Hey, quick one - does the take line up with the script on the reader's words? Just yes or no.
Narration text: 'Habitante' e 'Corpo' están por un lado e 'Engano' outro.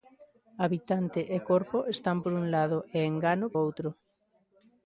yes